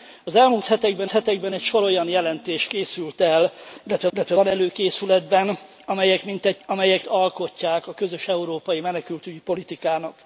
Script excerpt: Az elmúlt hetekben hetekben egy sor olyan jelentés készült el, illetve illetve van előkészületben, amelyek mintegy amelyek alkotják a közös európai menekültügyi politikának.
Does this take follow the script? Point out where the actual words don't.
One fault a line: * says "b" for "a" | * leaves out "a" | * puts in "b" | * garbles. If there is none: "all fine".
all fine